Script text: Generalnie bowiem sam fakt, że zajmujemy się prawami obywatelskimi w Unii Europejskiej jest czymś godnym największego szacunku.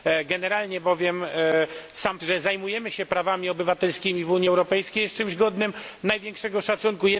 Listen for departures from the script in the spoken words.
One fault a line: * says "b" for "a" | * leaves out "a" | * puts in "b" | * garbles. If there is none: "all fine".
* leaves out "fakt"